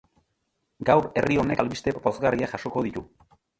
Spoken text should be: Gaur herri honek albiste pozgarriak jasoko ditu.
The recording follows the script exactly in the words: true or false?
true